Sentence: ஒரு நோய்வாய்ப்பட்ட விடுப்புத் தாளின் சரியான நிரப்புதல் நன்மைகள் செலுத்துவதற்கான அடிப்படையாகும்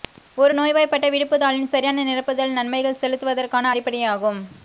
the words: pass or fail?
pass